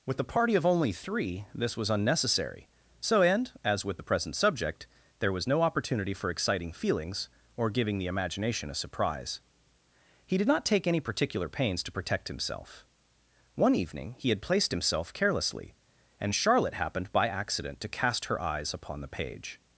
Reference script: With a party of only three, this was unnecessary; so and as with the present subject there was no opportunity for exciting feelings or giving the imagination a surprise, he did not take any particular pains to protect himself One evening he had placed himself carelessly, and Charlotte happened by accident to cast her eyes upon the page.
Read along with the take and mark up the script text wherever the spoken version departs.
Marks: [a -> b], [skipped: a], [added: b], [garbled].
With a party of only three, this was unnecessary; so and as with the present subject there was no opportunity for exciting feelings or giving the imagination a surprise, he did not take any particular pains to protect himself One evening he had placed himself carelessly, and Charlotte happened by accident to cast her eyes upon the page.